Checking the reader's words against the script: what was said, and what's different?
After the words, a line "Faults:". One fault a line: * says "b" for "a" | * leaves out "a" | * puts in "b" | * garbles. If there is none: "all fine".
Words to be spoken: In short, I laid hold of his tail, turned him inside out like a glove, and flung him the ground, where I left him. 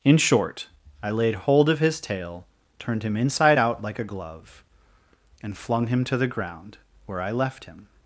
In short, I laid hold of his tail, turned him inside out like a glove, and flung him to the ground, where I left him.
Faults:
* puts in "to"